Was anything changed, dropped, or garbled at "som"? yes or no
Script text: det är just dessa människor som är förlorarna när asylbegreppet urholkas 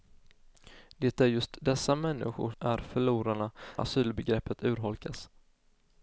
yes